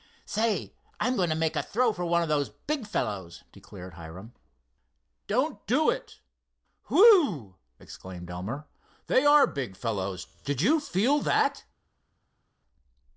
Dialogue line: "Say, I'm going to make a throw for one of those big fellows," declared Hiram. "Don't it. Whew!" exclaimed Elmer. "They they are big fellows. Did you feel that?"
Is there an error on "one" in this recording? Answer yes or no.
no